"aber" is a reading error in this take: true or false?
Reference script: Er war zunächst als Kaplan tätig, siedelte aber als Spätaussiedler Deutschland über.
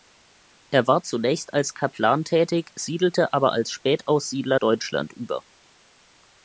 false